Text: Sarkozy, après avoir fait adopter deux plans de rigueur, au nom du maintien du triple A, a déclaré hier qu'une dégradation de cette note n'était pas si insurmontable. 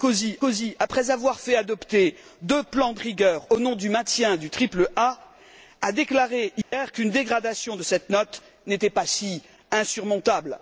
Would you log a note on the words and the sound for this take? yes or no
yes